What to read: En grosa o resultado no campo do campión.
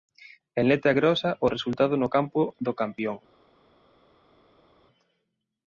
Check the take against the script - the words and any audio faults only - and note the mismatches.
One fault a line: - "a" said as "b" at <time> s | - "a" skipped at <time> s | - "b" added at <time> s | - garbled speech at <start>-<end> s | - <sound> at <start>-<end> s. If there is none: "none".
- "letra" added at 0.7 s